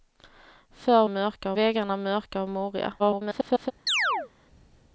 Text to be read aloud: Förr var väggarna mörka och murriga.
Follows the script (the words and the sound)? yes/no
no